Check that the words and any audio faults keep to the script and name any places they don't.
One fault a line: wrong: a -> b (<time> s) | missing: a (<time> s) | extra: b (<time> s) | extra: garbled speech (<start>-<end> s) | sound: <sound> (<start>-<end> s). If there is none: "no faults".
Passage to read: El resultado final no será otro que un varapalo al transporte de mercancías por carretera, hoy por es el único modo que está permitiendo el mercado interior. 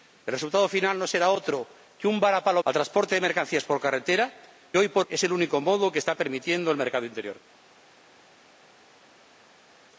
no faults